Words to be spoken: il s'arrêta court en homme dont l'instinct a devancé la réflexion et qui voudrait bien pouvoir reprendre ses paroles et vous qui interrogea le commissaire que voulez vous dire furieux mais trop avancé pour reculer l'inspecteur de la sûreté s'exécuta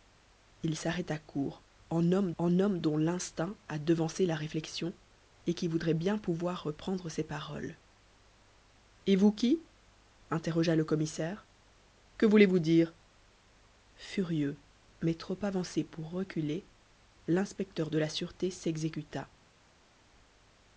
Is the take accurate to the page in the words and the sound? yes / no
no